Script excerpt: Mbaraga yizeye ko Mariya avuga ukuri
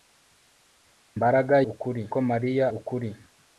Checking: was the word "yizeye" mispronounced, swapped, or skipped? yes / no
yes